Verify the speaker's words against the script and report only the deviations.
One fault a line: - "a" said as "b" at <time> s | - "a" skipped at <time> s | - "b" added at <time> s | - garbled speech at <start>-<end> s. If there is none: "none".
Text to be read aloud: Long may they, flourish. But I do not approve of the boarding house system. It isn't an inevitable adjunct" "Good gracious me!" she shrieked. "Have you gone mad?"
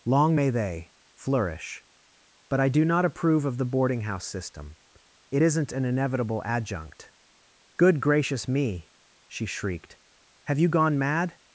none